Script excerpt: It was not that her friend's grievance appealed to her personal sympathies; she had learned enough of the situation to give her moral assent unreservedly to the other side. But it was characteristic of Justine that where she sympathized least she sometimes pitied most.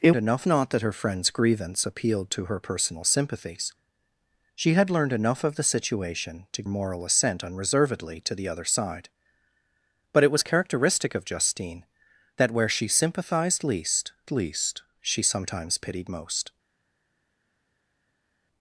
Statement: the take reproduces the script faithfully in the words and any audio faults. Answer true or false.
false